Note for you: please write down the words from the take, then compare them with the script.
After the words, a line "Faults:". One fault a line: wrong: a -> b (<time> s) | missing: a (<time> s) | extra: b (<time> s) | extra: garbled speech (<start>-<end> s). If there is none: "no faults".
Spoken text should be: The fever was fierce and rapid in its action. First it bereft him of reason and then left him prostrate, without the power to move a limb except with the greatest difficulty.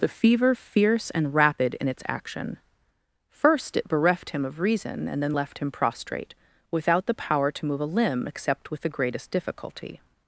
The fever fierce and rapid in its action. First it bereft him of reason and then left him prostrate, without the power to move a limb except with the greatest difficulty.
Faults:
missing: was (0.6 s)